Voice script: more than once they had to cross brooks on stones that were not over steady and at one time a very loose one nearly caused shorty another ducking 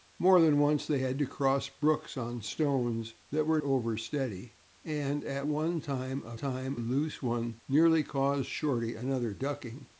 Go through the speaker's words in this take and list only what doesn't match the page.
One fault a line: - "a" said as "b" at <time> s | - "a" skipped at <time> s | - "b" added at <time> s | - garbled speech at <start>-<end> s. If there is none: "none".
- "not" skipped at 3.6 s
- "very" said as "time" at 6.3 s